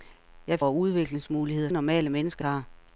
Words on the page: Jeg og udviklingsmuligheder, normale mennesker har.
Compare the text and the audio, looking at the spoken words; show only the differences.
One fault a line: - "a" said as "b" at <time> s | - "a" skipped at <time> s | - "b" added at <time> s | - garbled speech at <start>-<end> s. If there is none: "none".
none